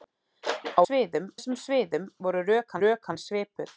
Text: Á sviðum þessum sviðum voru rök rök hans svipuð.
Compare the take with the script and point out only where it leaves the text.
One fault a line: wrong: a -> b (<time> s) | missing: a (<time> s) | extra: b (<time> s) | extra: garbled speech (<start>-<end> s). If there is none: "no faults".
no faults